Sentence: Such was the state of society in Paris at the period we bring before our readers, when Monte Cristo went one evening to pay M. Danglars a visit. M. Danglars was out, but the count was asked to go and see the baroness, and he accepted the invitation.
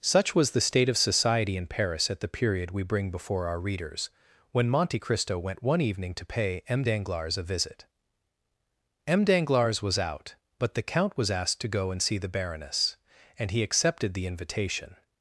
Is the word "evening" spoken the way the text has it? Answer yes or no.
yes